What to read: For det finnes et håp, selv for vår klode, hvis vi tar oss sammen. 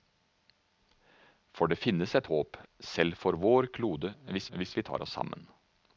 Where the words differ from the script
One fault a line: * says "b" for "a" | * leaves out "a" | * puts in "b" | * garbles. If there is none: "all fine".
* puts in "hvis"